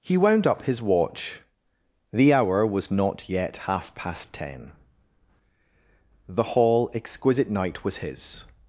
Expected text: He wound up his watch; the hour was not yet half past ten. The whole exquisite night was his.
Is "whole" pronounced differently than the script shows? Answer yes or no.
yes